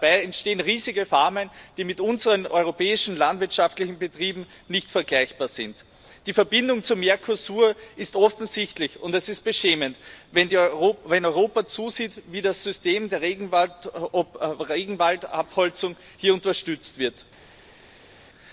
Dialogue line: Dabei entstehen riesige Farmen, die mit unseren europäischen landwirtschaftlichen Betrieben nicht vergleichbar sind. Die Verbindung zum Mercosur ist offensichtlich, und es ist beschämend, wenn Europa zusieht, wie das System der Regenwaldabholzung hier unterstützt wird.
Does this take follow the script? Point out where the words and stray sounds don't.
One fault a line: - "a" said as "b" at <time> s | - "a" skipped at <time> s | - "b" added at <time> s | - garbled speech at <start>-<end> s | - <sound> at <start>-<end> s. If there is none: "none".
none